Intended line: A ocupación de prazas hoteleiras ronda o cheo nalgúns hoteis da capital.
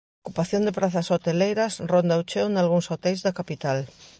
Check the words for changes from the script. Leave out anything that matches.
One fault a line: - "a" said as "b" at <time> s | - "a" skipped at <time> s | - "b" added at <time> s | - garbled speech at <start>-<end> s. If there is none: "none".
none